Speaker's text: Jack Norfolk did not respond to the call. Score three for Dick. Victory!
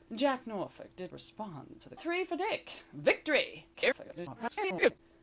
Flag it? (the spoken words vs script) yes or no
yes